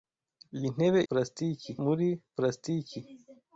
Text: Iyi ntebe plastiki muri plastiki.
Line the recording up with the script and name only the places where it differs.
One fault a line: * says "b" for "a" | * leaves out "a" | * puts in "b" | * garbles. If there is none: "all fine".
all fine